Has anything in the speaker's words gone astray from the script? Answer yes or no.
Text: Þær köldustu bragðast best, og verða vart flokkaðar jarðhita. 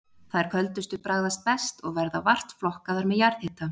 yes